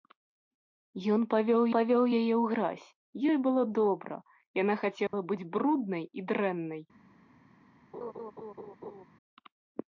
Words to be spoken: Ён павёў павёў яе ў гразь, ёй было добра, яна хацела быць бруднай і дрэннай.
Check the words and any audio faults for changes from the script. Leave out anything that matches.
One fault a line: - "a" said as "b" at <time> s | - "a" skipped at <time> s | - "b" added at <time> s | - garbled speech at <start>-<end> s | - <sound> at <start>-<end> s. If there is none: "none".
- dropout at 5.1-5.1 s
- laugh at 7.9-9.0 s